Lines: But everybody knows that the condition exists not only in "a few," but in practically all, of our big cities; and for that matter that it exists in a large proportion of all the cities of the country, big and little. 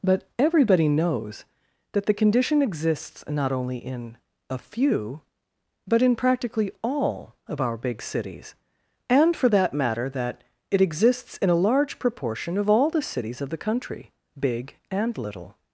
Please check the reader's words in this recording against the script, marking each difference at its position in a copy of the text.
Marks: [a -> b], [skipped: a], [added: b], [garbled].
But everybody knows that the condition exists not only in "a few," but in practically all, of our big cities; and for that matter that it exists in a large proportion of all the cities of the country, big and little.